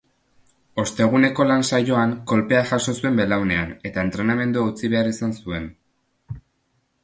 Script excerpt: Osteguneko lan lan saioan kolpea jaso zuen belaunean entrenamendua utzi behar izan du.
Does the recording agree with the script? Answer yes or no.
no